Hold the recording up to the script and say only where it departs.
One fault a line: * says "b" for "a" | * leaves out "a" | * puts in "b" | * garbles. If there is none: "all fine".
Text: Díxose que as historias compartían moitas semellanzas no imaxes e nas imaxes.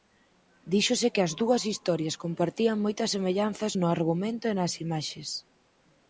* puts in "dúas"
* says "argumento" for "imaxes"